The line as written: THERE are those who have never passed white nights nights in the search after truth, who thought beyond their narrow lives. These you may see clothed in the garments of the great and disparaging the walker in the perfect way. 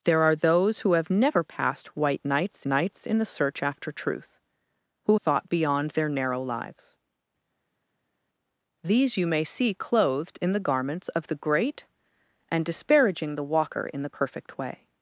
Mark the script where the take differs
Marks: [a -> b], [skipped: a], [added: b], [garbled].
THERE are those who have never passed white nights nights in the search after truth, who thought beyond their narrow lives. These you may see clothed in the garments of the great and disparaging the walker in the perfect way.